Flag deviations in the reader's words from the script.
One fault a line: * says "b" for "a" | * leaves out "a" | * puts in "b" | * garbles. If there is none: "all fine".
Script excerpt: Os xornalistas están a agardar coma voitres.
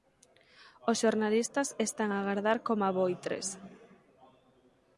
all fine